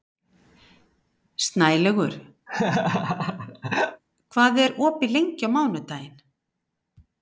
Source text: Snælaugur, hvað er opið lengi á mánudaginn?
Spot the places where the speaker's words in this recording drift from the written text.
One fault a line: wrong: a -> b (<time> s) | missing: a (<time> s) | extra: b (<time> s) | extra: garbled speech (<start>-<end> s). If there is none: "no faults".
no faults